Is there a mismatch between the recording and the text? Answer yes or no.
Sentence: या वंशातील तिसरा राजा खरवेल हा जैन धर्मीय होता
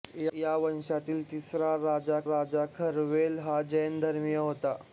yes